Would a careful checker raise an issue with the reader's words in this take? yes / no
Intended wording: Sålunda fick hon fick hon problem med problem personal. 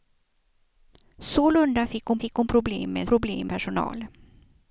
no